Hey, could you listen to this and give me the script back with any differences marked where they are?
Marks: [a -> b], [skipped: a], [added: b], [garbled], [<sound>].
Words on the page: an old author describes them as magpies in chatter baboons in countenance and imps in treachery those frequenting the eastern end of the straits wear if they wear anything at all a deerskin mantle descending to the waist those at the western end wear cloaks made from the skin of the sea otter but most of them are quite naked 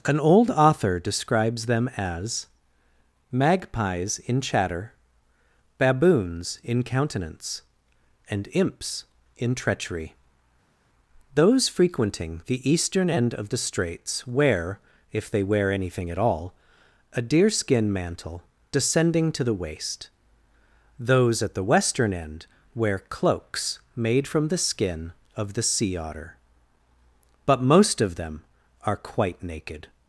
an old author describes them as magpies in chatter baboons in countenance and imps in treachery those frequenting the eastern end of the straits wear if they wear anything at all a deerskin mantle descending to the waist those at the western end wear cloaks made from the skin of the sea otter but most of them are quite naked